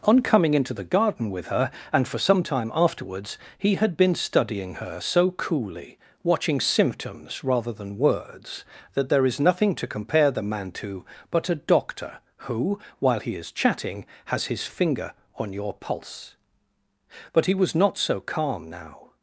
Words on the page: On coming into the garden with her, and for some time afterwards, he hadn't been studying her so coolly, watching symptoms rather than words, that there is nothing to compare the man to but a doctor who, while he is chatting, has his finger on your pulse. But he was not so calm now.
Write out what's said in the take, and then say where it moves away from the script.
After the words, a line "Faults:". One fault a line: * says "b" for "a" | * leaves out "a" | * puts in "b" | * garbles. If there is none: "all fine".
On coming into the garden with her, and for some time afterwards, he had been studying her so coolly, watching symptoms rather than words, that there is nothing to compare the man to but a doctor who, while he is chatting, has his finger on your pulse. But he was not so calm now.
Faults:
* says "had" for "hadn't"